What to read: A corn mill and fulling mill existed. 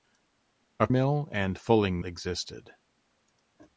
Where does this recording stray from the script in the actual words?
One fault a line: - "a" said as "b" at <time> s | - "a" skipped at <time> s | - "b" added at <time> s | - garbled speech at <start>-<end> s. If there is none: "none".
- "corn" skipped at 0.9 s
- "mill" skipped at 2.0 s